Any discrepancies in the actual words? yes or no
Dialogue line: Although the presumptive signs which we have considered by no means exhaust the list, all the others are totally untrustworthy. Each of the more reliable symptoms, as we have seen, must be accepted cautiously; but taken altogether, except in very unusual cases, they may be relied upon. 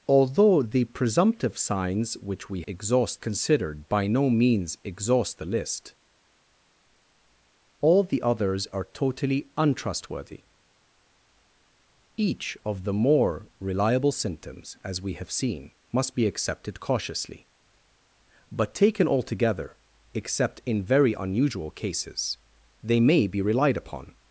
yes